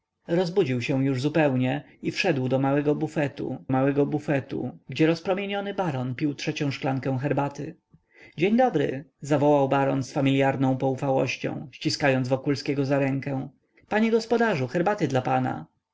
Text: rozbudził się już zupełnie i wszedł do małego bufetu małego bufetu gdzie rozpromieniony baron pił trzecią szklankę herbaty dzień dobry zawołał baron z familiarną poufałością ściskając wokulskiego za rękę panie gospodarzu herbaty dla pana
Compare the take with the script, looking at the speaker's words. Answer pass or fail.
pass